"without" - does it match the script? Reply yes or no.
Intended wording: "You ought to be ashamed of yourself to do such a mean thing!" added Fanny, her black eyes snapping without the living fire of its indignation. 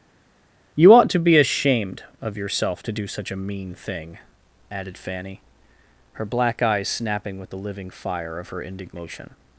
no